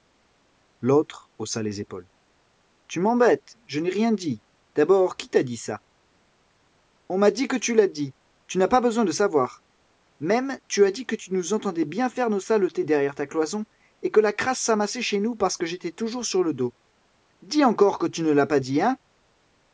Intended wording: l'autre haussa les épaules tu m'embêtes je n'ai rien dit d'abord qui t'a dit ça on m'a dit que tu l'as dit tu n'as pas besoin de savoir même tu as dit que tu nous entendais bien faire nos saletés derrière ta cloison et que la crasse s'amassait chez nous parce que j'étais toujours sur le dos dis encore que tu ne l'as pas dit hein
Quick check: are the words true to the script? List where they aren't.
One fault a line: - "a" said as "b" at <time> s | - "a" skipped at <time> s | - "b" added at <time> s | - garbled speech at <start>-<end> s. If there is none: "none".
none